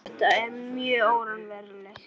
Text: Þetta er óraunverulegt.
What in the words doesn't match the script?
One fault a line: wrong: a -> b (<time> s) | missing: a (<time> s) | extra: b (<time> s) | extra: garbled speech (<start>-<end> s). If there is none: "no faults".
extra: mjög (0.5 s)